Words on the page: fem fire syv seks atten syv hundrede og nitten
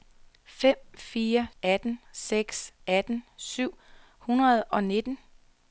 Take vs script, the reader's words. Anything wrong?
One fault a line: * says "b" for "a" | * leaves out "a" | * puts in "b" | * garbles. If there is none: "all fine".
* says "atten" for "syv"